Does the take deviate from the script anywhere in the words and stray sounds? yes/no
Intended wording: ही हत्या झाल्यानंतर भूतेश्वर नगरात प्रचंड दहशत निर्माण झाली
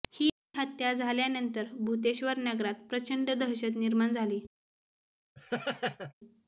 yes